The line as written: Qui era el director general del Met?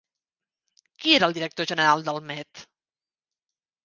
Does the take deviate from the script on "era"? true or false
false